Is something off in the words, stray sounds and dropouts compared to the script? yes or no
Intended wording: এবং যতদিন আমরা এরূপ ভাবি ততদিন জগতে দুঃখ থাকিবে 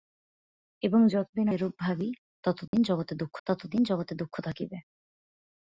yes